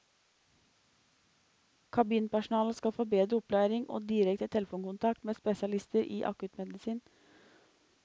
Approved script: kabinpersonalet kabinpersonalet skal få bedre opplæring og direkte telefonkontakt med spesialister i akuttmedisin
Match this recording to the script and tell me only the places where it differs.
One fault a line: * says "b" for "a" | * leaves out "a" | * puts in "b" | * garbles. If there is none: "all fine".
* leaves out "kabinpersonalet"